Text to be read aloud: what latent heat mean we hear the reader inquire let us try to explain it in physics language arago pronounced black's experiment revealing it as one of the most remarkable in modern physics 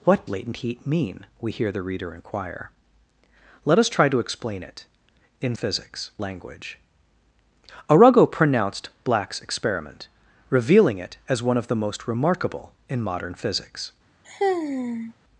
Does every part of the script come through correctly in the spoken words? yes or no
yes